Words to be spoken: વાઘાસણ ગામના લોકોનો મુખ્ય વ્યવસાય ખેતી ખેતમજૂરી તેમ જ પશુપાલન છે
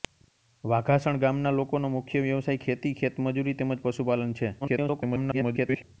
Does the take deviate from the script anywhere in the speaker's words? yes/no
yes